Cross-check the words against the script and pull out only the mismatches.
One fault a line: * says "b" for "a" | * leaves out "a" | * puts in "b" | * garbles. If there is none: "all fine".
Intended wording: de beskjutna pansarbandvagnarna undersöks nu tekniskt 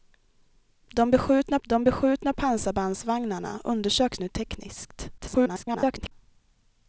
* puts in "de beskjutna"
* garbles